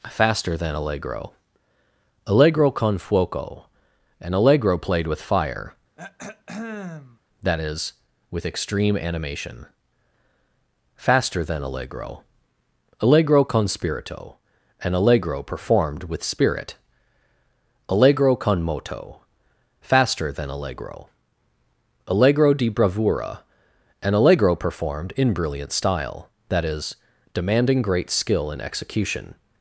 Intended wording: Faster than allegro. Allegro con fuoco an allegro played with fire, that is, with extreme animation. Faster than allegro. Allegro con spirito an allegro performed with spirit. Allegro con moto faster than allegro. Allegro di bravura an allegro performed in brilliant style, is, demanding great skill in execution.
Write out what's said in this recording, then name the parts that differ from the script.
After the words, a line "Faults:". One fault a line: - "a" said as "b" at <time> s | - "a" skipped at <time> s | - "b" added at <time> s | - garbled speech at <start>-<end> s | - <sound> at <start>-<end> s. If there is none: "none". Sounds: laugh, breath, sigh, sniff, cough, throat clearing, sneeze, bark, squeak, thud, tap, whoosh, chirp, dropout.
Faster than allegro. Allegro con fuoco an allegro played with fire, that is, with extreme animation. Faster than allegro. Allegro con spirito an allegro performed with spirit. Allegro con moto faster than allegro. Allegro di bravura an allegro performed in brilliant style, that is, demanding great skill in execution.
Faults:
- throat clearing at 6.0-7.2 s
- "that" added at 26.5 s